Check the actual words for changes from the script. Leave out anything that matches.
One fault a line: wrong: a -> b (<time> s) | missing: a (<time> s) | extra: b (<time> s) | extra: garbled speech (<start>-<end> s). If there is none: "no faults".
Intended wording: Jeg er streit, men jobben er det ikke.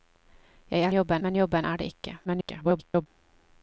wrong: streit -> jobben (0.9 s)
extra: garbled speech (2.2-3.1 s)